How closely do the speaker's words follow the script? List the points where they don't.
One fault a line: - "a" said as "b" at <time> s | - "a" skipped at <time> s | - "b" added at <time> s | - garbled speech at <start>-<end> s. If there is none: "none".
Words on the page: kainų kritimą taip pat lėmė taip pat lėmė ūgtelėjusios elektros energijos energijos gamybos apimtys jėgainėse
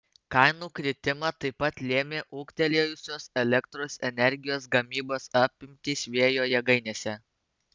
- "taip pat lėmė" skipped at 2.2 s
- "energijos" skipped at 4.7 s
- "vėjo" added at 6.2 s